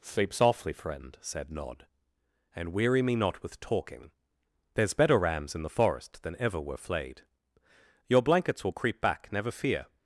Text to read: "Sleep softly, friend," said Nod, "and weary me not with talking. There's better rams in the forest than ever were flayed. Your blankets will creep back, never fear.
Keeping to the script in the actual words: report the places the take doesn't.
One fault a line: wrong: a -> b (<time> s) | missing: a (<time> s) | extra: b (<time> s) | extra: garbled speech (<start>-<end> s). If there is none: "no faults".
no faults